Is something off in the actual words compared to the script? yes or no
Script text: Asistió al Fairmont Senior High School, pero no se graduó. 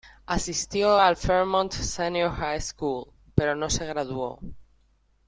no